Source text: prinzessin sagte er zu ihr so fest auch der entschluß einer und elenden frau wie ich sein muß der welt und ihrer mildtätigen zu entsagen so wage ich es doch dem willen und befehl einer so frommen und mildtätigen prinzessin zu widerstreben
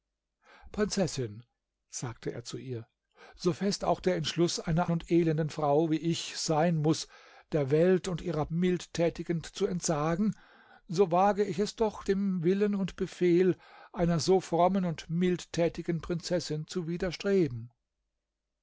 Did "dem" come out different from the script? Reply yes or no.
no